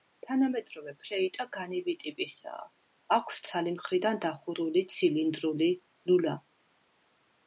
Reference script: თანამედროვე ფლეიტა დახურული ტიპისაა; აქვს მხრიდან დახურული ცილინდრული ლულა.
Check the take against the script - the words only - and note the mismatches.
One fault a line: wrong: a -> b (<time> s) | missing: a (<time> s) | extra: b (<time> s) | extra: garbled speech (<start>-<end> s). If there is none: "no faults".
wrong: დახურული -> განივი (1.6 s)
extra: ცალი (3.5 s)